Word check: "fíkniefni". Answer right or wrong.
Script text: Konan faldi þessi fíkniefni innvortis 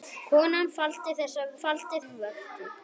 wrong